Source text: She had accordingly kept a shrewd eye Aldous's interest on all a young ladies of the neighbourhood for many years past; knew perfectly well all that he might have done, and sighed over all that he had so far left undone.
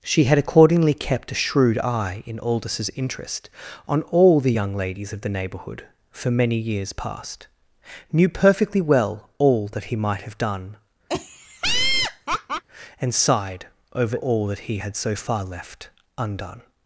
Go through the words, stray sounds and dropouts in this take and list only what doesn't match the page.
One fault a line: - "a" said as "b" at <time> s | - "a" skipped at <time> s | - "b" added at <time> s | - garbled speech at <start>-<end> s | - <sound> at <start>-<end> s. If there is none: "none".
- "in" added at 2.2 s
- "a" said as "the" at 4.4 s
- laugh at 11.1-12.6 s